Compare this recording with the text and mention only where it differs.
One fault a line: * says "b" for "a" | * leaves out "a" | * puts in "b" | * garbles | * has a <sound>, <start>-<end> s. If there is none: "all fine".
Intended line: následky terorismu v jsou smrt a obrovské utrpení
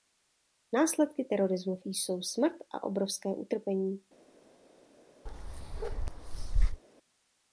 * has a bark, 5.3-6.8 s